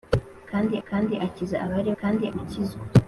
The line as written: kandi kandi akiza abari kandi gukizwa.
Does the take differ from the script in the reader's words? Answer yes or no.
no